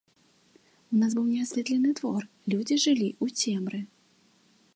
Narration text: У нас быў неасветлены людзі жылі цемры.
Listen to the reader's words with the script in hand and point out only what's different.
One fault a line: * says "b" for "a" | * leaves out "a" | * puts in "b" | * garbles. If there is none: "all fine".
* puts in "двор"
* puts in "ў"